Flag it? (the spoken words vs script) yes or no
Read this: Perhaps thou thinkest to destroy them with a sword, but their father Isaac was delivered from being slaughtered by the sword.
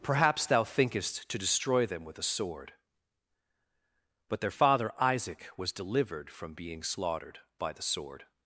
no